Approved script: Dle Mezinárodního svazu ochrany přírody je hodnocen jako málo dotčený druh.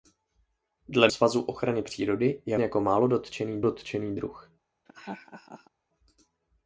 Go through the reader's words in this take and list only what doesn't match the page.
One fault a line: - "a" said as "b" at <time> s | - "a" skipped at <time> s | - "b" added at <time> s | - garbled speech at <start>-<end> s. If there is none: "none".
- "Mezinárodního" skipped at 1.1 s
- "hodnocen" skipped at 2.6 s
- "dotčený" added at 3.6 s